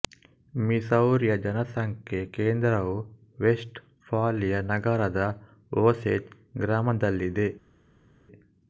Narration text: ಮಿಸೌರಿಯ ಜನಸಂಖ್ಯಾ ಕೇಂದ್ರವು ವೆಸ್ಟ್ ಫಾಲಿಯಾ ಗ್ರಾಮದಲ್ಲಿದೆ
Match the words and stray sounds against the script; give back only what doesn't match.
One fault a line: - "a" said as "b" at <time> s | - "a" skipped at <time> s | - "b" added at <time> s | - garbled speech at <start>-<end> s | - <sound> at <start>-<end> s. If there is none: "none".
- "ನಗರದ ಓಸೇಜ್" added at 4.7 s